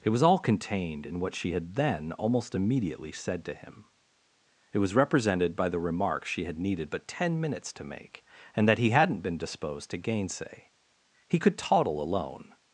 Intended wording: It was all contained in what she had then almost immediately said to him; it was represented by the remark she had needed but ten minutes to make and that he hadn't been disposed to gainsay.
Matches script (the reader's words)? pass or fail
fail